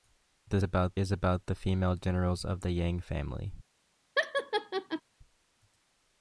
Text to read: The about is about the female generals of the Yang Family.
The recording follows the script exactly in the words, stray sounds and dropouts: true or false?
false